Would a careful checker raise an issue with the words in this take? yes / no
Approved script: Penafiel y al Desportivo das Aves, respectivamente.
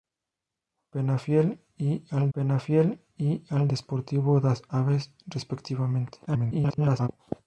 yes